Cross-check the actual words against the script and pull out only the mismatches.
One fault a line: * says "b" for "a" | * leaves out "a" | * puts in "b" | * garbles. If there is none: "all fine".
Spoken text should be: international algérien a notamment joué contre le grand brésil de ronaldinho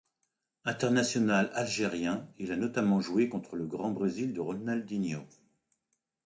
* puts in "il"